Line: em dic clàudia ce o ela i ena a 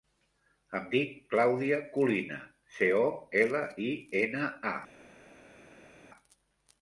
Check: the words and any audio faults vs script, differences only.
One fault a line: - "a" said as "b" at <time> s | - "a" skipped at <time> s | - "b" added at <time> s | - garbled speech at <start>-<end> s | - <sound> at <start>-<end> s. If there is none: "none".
- "colina" added at 2.0 s